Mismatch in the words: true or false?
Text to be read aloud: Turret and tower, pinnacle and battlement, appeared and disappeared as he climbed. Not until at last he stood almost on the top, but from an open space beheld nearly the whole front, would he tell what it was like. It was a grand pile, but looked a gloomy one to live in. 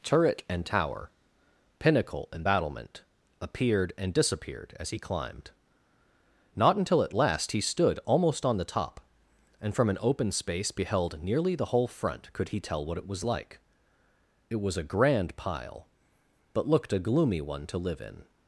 true